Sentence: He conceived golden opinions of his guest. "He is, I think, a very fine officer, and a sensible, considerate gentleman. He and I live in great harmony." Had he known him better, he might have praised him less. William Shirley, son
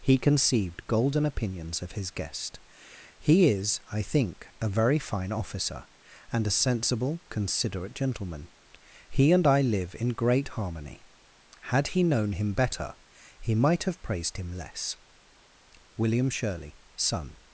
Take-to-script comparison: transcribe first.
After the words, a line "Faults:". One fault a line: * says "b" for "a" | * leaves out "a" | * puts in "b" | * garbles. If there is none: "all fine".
He conceived golden opinions of his guest. "He is, I think, a very fine officer, and a sensible, considerate gentleman. He and I live in great harmony." Had he known him better, he might have praised him less. William Shirley, son
Faults:
all fine